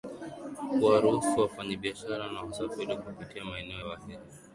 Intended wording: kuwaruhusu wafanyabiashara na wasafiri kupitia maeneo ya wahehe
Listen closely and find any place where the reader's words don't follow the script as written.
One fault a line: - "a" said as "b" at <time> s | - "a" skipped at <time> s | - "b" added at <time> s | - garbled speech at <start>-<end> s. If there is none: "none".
- "ya" skipped at 3.8 s